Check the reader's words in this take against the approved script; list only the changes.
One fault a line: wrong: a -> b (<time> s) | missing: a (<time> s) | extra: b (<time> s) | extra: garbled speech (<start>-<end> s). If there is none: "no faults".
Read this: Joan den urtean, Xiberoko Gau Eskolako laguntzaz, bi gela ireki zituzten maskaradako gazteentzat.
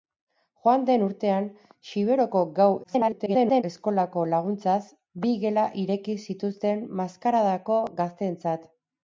extra: garbled speech (2.8-3.6 s)